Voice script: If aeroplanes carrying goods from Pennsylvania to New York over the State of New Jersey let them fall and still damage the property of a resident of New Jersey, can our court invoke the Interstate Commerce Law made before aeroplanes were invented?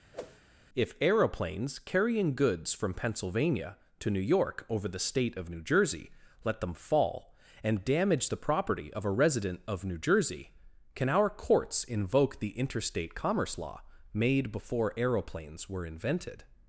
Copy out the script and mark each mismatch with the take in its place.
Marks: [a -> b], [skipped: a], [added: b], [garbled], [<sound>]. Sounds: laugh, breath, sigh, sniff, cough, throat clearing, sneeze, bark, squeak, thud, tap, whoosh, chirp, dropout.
[whoosh] If aeroplanes carrying goods from Pennsylvania to New York over the State of New Jersey let them fall and [skipped: still] damage the property of a resident of New Jersey, can our [court -> courts] invoke the Interstate Commerce Law made before aeroplanes were invented?